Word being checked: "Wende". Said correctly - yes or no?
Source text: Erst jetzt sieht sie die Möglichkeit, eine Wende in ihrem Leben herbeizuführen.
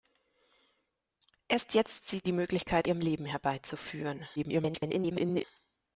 no